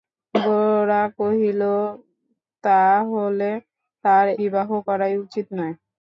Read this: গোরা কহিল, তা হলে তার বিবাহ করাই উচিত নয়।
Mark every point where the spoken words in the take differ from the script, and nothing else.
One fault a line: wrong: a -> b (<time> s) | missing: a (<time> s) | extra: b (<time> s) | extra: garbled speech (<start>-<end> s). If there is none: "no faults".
no faults